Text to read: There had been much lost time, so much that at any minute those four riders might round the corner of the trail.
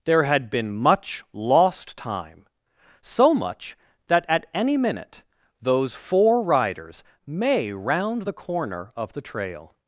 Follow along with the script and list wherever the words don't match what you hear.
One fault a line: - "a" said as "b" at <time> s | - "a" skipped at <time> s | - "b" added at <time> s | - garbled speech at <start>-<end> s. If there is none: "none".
- "might" said as "may" at 7.3 s